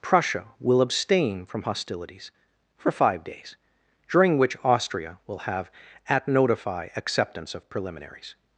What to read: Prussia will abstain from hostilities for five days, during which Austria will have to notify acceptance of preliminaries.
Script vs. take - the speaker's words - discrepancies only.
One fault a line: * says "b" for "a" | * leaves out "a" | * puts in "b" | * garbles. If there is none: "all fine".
* says "at" for "to"